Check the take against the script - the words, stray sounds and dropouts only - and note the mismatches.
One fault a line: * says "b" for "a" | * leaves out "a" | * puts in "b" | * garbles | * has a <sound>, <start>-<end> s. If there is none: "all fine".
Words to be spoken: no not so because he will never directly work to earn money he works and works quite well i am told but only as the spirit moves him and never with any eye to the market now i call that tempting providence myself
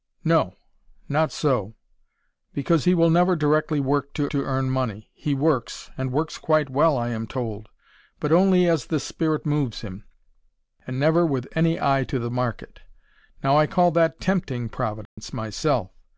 * puts in "to"
* has a dropout, 15.0-15.2 s